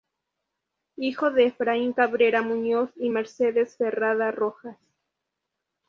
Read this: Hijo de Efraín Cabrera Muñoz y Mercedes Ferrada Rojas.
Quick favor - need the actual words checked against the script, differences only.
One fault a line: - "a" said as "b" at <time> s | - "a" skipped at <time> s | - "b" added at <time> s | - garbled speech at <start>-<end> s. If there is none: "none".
none